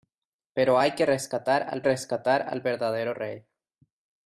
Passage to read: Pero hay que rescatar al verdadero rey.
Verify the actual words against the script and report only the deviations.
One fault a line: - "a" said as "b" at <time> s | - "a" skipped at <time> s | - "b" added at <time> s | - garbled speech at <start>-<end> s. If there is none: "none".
- "rescatar al" added at 1.8 s